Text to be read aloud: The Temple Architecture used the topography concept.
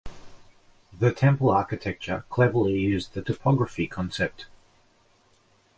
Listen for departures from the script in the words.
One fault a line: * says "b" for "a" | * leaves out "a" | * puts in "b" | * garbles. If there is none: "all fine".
* puts in "cleverly"